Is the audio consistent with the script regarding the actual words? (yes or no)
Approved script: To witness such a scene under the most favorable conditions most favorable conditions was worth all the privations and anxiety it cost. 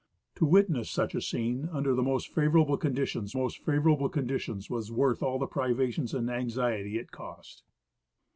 yes